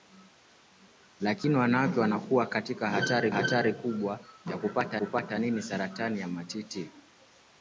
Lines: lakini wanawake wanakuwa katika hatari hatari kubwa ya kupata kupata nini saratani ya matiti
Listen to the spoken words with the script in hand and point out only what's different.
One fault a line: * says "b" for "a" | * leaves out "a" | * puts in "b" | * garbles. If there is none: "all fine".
all fine